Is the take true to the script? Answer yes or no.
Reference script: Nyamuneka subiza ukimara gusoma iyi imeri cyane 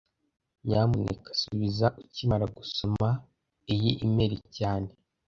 yes